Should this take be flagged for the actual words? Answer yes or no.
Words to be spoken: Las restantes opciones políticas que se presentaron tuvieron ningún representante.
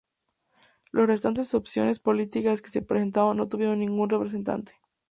yes